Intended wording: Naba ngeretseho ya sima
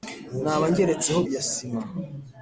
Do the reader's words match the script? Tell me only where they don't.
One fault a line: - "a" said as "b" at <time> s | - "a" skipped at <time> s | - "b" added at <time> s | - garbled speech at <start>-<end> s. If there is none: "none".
none